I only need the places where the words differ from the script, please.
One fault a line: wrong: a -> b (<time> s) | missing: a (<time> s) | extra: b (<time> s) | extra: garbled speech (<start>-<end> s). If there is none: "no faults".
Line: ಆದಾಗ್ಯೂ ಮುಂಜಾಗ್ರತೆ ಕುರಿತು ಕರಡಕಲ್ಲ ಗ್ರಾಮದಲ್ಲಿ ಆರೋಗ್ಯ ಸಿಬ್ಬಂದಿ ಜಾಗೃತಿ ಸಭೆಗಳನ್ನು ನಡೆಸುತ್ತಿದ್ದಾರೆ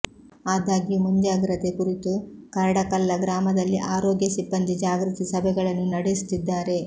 no faults